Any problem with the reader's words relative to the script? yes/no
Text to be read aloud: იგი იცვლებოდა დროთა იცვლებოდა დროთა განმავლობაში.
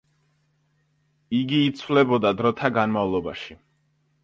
yes